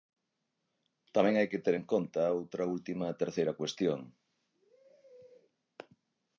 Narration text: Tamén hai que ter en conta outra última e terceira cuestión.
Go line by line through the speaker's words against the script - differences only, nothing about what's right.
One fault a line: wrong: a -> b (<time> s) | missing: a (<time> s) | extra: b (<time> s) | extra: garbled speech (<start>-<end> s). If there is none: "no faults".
no faults